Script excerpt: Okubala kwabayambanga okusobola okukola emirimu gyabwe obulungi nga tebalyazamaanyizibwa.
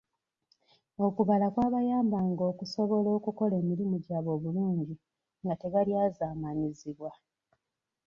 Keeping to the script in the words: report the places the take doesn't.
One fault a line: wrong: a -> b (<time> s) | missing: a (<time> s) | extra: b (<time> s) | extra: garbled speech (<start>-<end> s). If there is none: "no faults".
no faults